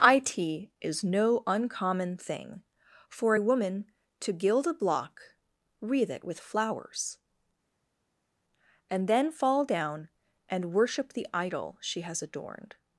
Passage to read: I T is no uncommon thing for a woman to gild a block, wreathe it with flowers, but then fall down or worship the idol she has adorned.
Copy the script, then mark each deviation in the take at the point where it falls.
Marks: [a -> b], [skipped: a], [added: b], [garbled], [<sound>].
I T is no uncommon thing for a woman to gild a block, wreathe it with flowers, [but -> and] then fall down [or -> and] worship the idol she has adorned.